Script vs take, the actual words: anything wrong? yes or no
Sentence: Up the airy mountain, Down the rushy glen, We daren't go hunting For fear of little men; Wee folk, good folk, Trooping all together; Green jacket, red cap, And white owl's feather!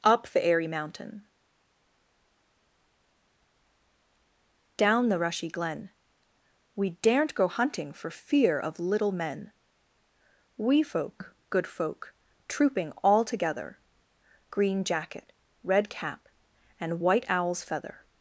no